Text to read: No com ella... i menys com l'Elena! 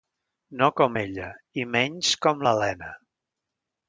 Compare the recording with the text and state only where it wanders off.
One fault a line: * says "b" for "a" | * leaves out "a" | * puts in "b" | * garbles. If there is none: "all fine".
all fine